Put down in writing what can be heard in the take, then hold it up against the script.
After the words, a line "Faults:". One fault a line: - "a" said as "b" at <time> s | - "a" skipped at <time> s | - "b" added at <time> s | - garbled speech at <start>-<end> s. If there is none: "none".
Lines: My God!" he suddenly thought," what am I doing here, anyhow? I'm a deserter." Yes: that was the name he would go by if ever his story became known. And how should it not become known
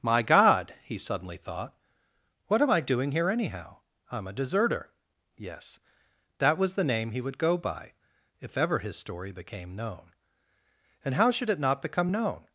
My God!" he suddenly thought," what am I doing here, anyhow? I'm a deserter." Yes: that was the name he would go by if ever his story became known. And how should it not become known
Faults:
none